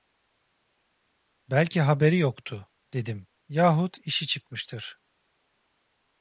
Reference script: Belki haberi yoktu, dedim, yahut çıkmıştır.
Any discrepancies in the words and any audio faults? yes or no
yes